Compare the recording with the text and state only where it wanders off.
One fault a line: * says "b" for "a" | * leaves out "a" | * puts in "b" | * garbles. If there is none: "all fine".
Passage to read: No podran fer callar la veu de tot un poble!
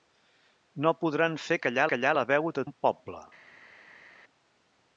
* puts in "callar"
* leaves out "tot"